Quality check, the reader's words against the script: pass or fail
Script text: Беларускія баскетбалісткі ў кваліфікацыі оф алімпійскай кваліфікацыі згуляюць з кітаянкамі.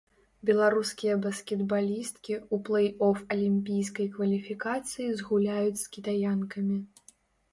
fail